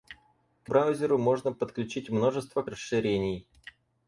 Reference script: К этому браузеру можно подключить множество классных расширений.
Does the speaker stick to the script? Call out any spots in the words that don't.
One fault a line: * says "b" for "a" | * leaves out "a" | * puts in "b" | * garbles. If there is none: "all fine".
* leaves out "этому"
* leaves out "классных"